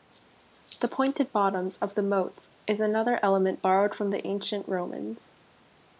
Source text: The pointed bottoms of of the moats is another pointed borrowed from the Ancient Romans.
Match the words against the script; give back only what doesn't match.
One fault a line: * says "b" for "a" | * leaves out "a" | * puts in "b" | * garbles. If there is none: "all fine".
* leaves out "of"
* says "element" for "pointed"